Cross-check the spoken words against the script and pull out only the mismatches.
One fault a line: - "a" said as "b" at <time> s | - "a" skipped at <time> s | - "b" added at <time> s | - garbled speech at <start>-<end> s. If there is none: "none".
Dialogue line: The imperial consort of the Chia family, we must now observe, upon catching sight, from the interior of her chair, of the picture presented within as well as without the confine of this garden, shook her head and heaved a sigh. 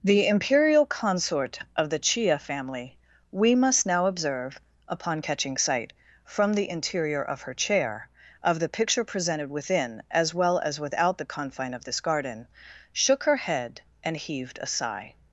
none